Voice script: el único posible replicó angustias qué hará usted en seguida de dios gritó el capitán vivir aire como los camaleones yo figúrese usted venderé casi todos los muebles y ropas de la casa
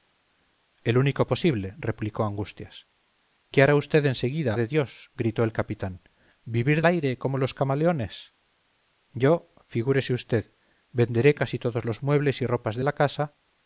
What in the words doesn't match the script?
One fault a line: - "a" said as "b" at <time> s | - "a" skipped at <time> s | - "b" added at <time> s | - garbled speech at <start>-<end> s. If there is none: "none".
none